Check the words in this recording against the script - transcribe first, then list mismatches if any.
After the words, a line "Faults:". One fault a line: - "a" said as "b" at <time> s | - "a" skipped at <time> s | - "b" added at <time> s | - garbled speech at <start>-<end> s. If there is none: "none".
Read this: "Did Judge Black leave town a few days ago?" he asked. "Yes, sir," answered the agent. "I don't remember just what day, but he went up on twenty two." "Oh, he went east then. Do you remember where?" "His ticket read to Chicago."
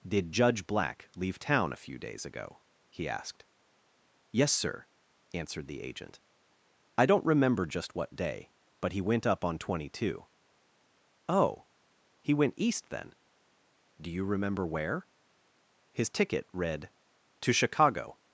"Did Judge Black leave town a few days ago?" he asked. "Yes, sir," answered the agent. "I don't remember just what day, but he went up on twenty two." "Oh, he went east then. Do you remember where?" "His ticket read to Chicago."
Faults:
none